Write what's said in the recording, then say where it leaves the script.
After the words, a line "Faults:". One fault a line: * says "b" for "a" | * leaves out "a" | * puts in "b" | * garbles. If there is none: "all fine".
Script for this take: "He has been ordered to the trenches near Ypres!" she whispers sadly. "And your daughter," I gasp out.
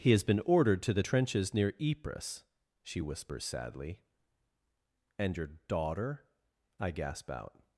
"He has been ordered to the trenches near Ypres!" she whispers sadly. "And your daughter," I gasp out.
Faults:
all fine